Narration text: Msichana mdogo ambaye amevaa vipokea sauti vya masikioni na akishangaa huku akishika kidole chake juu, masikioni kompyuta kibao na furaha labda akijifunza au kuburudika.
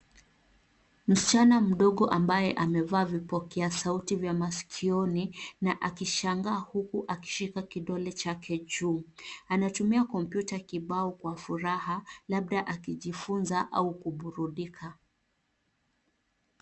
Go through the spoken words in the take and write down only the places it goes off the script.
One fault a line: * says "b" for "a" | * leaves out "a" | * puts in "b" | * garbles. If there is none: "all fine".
* says "anatumia" for "masikioni"
* says "kwa" for "na"